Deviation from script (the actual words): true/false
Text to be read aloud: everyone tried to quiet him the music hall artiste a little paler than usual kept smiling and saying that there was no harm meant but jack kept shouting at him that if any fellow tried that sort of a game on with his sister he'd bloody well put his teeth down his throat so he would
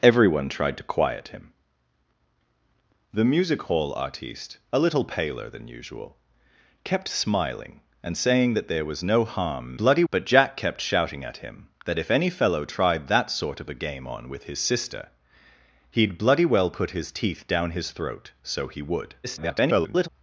true